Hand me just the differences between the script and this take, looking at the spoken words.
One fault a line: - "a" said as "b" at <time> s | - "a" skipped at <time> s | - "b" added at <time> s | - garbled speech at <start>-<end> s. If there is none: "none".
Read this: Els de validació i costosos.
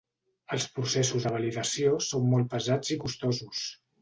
- "processos" added at 0.8 s
- "són molt pesats" added at 2.1 s